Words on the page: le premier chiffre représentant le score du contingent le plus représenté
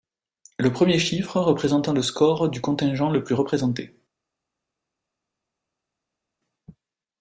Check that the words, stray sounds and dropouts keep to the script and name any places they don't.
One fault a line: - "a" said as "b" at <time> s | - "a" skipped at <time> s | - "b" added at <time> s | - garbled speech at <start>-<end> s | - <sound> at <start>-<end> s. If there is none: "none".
none